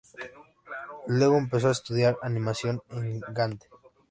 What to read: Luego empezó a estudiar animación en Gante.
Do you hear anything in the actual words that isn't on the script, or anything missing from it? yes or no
no